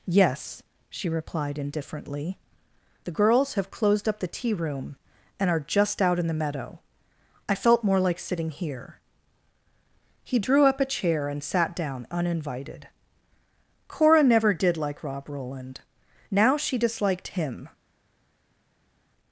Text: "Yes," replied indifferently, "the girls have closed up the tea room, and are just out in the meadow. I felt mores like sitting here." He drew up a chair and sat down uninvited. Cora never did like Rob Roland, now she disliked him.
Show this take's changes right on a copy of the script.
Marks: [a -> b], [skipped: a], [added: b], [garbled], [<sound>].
"Yes," [added: she] replied indifferently, "the girls have closed up the tea room, and are just out in the meadow. I felt [mores -> more] like sitting here." He drew up a chair and sat down uninvited. Cora never did like Rob Roland, now she disliked him.